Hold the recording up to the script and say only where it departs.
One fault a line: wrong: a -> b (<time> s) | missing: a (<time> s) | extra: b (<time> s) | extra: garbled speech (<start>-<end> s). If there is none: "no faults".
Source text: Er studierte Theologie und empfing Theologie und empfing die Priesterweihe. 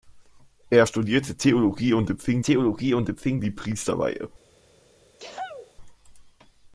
no faults